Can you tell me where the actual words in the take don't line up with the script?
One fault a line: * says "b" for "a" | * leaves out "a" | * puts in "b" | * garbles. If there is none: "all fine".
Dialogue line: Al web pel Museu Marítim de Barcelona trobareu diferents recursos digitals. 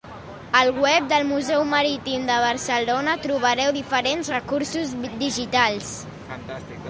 * says "del" for "pel"